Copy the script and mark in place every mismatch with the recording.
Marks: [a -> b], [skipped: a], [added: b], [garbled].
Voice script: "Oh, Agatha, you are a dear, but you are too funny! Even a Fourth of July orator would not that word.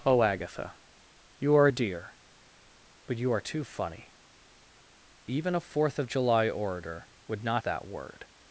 "Oh, Agatha, you are a dear, but you are too funny! Even a Fourth of July orator would not that word.